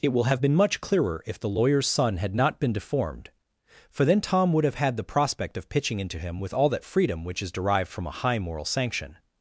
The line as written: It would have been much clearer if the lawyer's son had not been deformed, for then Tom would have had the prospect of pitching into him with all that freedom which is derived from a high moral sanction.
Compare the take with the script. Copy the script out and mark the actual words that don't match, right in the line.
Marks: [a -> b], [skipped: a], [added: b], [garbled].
It [would -> will] have been much clearer if the lawyer's son had not been deformed, for then Tom would have had the prospect of pitching into him with all that freedom which is derived from a high moral sanction.